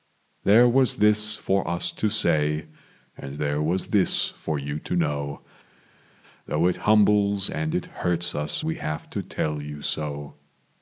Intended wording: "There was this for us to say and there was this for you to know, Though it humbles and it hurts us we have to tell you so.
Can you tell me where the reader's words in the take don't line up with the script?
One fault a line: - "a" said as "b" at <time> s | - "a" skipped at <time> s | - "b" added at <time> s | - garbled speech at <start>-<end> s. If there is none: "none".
none